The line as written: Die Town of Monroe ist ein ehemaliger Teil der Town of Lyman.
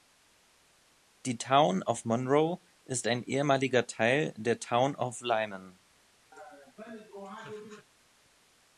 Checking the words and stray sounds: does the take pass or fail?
fail